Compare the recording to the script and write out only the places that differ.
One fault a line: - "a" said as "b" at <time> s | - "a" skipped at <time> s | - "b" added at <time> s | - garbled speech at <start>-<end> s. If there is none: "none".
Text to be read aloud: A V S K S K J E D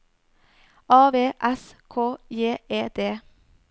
- "S K" skipped at 2.2 s